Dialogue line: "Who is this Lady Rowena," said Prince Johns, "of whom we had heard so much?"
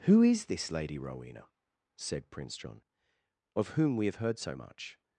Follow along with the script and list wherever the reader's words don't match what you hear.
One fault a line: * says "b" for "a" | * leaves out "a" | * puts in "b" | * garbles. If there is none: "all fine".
* says "John" for "Johns"
* says "have" for "had"